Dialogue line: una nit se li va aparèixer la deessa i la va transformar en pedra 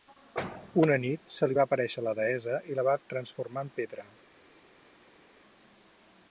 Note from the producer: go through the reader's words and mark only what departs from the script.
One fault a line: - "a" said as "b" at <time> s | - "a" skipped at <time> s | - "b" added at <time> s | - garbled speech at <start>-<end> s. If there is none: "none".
none